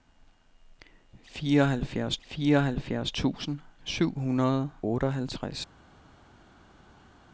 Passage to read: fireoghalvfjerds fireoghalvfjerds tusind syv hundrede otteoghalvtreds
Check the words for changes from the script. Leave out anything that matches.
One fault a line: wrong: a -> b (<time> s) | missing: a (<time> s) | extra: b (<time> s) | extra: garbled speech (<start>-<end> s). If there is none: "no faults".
no faults